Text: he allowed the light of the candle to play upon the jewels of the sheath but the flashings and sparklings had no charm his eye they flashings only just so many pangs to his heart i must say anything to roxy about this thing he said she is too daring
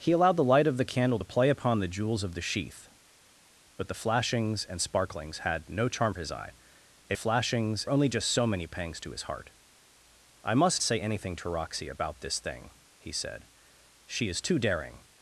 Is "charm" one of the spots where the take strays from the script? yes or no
no